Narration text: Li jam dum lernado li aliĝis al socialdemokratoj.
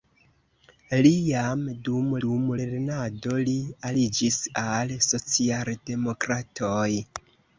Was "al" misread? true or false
false